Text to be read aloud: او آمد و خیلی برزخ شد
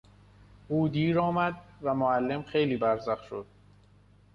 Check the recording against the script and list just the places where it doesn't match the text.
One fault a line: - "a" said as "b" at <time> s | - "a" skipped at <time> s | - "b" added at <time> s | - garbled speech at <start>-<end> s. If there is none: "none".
- "دیر" added at 0.8 s
- "معلم" added at 1.9 s